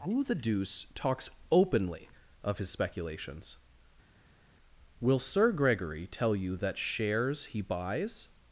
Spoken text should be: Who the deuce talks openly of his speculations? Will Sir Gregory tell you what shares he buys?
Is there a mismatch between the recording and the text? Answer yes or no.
yes